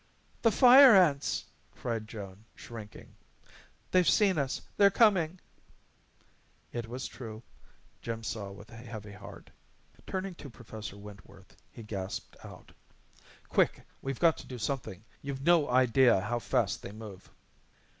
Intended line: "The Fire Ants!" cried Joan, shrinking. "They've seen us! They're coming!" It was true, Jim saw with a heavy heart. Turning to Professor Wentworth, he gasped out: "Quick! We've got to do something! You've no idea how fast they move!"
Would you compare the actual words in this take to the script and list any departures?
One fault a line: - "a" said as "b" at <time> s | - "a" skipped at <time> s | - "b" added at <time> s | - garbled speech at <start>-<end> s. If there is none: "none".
none